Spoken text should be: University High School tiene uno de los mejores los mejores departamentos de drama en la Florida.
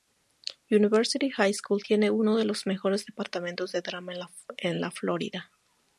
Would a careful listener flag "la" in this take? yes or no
no